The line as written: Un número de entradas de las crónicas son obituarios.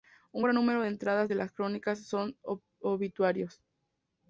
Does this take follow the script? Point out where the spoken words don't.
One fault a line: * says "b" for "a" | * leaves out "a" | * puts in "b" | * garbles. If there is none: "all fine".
* puts in "gran"